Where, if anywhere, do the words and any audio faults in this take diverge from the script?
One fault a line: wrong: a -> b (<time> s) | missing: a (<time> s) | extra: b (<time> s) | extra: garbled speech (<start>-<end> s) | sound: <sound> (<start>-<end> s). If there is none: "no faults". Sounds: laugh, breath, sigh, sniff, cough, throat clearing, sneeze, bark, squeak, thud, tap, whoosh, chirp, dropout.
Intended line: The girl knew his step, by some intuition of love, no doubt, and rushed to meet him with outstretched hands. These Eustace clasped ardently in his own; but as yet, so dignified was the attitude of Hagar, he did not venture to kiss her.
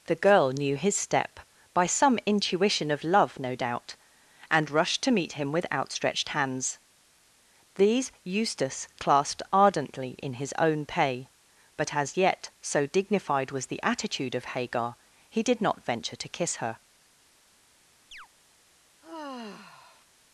extra: pay (10.8 s)
sound: chirp (18.1-18.3 s)
sound: sigh (19.0-20.1 s)